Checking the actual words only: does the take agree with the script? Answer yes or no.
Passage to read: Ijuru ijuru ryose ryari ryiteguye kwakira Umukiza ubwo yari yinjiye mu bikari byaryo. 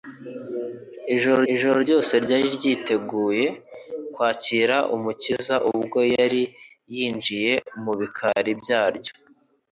yes